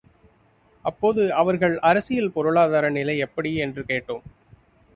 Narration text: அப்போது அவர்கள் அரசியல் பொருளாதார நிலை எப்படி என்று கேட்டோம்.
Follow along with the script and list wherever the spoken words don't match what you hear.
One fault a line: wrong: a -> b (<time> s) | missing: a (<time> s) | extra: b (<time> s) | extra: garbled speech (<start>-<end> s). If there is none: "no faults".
no faults